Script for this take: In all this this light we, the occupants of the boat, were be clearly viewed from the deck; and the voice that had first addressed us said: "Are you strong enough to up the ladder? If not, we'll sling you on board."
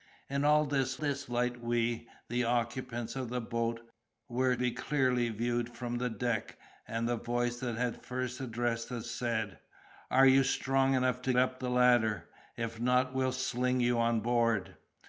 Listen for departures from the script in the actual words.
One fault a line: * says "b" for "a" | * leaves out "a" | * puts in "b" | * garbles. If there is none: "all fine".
all fine